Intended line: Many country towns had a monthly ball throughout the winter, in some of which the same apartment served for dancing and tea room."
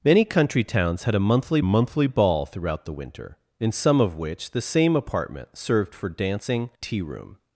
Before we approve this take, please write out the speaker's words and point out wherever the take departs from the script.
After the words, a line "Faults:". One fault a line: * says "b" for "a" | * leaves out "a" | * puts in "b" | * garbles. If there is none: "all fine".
Many country towns had a monthly monthly ball throughout the winter, in some of which the same apartment served for dancing tea room."
Faults:
* puts in "monthly"
* leaves out "and"